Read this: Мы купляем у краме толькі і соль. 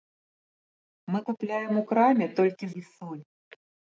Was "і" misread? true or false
false